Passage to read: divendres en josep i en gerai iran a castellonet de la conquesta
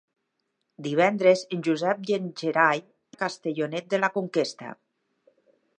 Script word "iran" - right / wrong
wrong